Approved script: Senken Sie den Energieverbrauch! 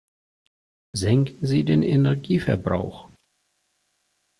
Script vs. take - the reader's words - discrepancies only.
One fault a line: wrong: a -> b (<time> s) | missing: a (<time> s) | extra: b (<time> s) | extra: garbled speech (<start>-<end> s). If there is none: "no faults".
no faults